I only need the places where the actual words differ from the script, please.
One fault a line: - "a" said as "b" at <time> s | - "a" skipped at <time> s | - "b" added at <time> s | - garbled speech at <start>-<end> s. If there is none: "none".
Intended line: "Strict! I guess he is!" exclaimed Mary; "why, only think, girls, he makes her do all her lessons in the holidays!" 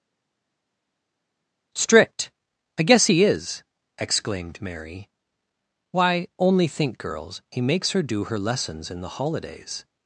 - "all" skipped at 8.2 s